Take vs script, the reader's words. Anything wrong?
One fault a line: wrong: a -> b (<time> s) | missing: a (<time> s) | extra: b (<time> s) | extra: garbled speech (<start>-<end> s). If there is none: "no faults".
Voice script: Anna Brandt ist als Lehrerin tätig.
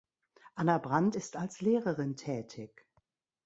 no faults